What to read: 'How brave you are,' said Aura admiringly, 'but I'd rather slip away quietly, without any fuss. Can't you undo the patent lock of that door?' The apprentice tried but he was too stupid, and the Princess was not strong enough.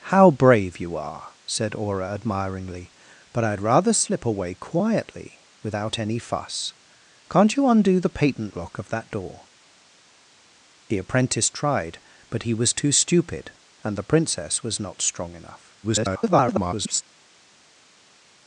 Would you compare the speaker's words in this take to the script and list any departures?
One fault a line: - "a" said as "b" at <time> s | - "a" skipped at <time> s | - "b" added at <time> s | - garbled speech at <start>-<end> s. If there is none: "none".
- garbled speech at 15.8-17.0 s